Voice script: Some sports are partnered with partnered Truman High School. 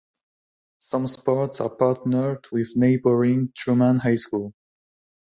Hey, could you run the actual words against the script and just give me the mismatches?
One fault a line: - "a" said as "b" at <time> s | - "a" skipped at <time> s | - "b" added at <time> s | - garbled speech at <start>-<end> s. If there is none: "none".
- "partnered" said as "neighboring" at 2.8 s